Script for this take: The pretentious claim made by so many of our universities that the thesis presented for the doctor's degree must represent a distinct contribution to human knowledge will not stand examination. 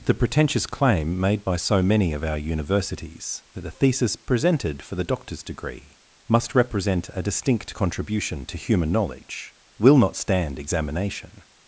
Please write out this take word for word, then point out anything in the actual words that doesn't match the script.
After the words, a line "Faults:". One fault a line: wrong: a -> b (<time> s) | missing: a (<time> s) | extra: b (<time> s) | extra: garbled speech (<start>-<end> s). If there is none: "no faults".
The pretentious claim made by so many of our universities that the thesis presented for the doctor's degree must represent a distinct contribution to human knowledge will not stand examination.
Faults:
no faults